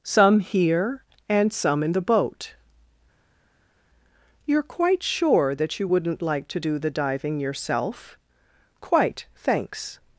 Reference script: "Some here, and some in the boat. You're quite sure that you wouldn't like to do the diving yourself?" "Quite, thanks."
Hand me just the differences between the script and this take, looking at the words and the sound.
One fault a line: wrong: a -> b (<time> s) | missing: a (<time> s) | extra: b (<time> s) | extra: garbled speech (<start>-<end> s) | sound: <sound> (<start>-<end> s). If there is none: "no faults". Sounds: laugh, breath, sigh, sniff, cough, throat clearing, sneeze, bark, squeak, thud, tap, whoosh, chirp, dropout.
no faults